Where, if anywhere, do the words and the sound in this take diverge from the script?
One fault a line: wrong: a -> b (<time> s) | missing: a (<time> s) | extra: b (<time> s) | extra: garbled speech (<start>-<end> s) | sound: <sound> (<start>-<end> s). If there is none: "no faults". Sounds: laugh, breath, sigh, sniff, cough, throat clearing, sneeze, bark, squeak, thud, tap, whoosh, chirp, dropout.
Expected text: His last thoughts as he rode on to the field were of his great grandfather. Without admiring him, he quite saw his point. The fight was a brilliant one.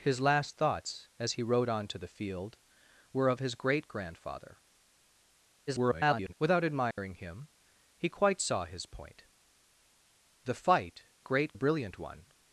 extra: garbled speech (5.7-6.3 s)
sound: dropout (6.9-7.0 s)
wrong: was -> great (11.2 s)